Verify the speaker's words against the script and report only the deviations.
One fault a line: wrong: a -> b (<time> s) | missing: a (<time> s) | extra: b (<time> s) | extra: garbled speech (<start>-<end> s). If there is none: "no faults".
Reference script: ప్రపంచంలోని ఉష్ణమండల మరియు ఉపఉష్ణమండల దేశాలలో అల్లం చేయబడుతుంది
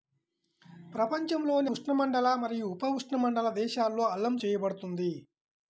no faults